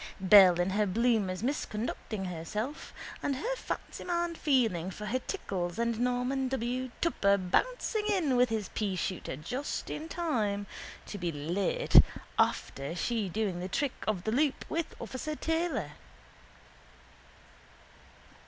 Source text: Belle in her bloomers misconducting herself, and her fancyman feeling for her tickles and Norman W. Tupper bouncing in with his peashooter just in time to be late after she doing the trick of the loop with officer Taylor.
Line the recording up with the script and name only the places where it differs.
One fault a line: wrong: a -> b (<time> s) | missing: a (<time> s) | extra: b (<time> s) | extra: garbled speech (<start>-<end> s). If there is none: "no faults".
no faults